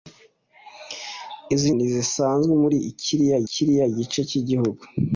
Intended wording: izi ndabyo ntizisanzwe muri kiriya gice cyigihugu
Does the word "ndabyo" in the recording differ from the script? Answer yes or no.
yes